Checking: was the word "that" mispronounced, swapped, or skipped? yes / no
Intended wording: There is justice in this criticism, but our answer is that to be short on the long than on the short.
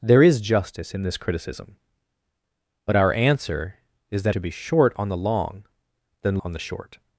no